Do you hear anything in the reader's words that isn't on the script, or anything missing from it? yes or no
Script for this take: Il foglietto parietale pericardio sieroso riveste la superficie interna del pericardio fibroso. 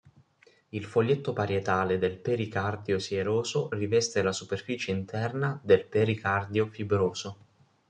yes